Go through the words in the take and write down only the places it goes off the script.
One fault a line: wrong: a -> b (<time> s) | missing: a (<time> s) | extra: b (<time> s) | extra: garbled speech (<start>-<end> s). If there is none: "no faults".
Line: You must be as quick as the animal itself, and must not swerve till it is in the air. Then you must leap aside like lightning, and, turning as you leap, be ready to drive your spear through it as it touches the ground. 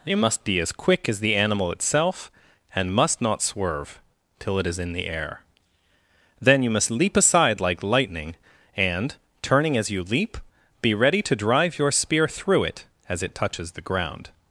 no faults